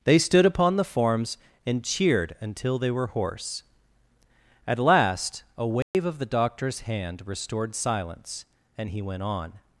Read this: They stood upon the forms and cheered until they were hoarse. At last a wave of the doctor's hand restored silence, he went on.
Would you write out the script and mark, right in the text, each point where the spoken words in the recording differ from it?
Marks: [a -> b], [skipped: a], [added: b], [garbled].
They stood upon the forms and cheered until they were hoarse. At last a wave of the doctor's hand restored silence, [added: and] he went on.